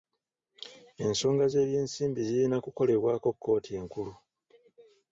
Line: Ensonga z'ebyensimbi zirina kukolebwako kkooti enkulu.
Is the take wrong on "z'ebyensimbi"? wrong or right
right